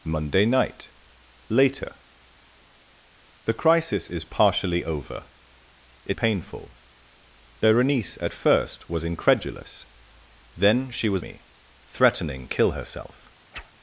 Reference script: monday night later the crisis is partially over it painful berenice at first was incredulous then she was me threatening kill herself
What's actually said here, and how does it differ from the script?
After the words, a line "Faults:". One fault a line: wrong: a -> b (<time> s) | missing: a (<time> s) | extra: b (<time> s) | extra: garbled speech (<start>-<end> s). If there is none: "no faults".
monday night later the crisis is partially over it painful berenice at first was incredulous then she was me threatening kill herself
Faults:
no faults